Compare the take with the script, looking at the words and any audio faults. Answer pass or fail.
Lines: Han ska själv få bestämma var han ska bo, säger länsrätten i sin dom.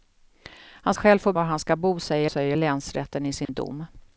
fail